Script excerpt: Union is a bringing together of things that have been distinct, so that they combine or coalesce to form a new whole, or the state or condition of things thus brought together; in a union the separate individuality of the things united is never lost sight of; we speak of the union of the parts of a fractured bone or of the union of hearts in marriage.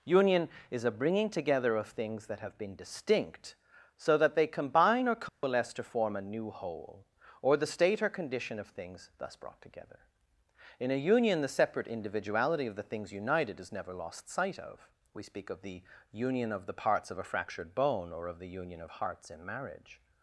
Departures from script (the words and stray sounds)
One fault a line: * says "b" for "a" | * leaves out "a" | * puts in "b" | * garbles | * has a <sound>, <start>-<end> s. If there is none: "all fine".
* has a dropout, 5.3-5.4 s